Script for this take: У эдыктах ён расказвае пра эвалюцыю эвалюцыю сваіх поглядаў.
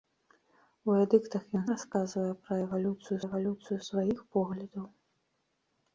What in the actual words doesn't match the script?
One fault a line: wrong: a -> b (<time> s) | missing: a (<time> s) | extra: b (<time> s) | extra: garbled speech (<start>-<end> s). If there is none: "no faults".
no faults